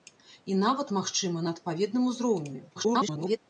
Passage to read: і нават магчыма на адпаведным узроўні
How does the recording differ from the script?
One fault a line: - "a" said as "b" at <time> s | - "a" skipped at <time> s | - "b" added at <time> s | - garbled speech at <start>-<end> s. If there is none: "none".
- garbled speech at 2.7-3.4 s